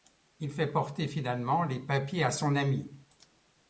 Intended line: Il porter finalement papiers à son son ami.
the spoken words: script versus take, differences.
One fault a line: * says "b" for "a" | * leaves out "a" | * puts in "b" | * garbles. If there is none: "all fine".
* puts in "fait"
* puts in "les"
* leaves out "son"